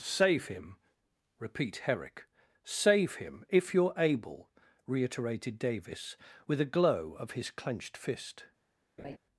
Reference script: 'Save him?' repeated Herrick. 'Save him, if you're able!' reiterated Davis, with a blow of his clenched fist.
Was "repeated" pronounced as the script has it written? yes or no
no